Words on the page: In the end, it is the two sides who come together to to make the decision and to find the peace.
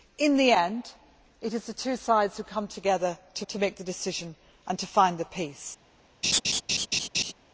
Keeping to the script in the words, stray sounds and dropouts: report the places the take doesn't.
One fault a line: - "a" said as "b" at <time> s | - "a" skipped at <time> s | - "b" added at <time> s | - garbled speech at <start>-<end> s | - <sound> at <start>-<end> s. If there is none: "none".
- laugh at 6.2-7.3 s